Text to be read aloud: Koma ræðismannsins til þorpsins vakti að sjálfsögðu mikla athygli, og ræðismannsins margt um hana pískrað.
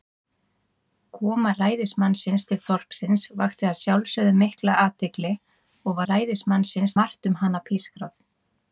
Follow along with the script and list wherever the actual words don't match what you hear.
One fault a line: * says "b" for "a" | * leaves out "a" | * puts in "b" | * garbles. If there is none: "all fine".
all fine